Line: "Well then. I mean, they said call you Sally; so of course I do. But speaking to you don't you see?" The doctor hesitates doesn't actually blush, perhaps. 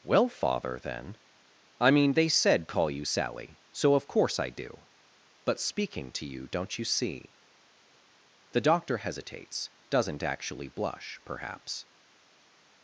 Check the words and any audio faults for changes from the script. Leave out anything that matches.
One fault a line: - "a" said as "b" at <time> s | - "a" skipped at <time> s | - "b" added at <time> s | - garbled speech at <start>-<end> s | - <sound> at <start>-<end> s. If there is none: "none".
- "father" added at 0.3 s